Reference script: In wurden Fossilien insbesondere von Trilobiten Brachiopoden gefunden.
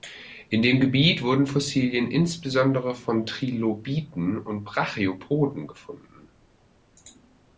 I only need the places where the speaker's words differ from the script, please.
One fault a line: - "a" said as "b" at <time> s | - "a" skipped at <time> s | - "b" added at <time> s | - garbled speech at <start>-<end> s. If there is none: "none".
- "dem Gebiet" added at 0.6 s
- "und" added at 4.4 s